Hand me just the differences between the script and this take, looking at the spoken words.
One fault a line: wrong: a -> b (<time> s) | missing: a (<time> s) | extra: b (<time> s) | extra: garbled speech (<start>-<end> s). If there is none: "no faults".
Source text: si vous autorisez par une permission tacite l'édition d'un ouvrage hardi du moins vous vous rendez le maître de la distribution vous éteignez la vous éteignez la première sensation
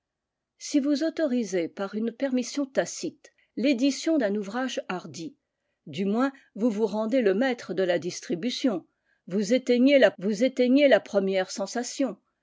no faults